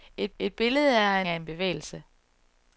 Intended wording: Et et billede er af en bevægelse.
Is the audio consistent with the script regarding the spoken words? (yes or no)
yes